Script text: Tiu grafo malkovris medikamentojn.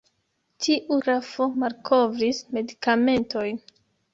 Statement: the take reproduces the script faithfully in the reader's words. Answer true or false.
true